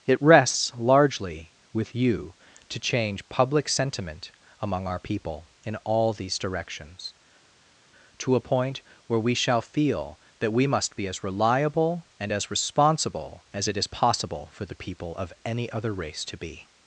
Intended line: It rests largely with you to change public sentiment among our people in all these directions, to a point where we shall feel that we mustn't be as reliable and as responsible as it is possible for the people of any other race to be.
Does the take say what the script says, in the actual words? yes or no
no